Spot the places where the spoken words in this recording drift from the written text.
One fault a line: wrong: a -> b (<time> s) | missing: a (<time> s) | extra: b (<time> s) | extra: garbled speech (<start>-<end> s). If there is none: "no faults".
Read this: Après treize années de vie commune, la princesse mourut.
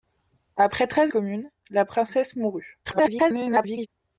missing: années de vie (1.1 s)
extra: garbled speech (2.9-3.9 s)